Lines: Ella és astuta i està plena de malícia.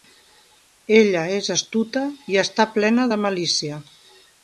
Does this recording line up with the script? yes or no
yes